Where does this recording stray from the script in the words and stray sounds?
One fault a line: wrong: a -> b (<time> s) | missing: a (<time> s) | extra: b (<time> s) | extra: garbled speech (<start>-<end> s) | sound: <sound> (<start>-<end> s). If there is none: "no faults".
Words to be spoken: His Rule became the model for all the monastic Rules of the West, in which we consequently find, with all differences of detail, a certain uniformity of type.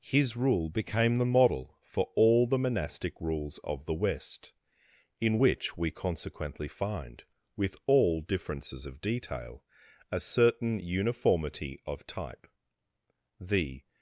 extra: The (13.4 s)